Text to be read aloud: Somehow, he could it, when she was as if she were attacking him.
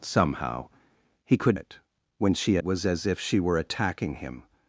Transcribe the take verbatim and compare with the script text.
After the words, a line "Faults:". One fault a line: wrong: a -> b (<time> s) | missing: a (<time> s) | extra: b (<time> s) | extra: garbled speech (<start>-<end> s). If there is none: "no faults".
Somehow, he could it, when she was as if she were attacking him.
Faults:
no faults